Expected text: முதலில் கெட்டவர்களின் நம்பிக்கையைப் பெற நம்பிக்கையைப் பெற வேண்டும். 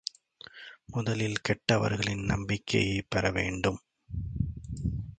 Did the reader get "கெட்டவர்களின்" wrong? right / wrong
right